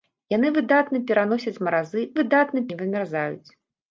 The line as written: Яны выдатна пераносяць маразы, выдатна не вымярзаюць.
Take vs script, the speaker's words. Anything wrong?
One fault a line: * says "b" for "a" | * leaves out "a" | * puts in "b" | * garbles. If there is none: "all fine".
all fine